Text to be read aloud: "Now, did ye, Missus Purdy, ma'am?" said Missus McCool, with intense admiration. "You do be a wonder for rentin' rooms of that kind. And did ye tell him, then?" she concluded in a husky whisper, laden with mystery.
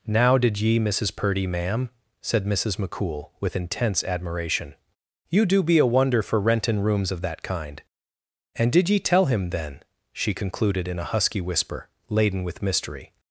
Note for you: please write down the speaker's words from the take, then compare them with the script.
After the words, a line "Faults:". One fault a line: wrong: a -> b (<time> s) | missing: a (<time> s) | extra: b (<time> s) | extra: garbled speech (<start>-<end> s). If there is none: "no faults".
"Now, did ye, Missus Purdy, ma'am?" said Missus McCool, with intense admiration. "You do be a wonder for rentin' rooms of that kind. And did ye tell him, then?" she concluded in a husky whisper, laden with mystery.
Faults:
no faults